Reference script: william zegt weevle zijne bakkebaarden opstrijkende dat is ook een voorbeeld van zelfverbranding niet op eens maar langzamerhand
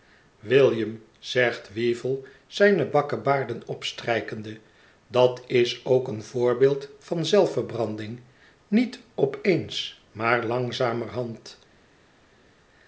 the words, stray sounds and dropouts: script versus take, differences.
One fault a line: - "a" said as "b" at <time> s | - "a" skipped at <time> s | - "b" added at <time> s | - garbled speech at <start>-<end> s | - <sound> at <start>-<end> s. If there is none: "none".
none